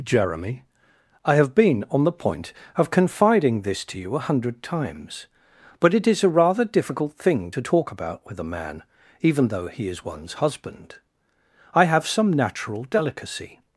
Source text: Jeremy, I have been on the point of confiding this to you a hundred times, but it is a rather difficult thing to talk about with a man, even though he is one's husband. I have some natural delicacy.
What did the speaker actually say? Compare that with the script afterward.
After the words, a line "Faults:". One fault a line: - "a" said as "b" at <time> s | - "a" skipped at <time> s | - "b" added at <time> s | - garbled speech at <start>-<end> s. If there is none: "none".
Jeremy, I have been on the point of confiding this to you a hundred times, but it is a rather difficult thing to talk about with a man, even though he is one's husband. I have some natural delicacy.
Faults:
none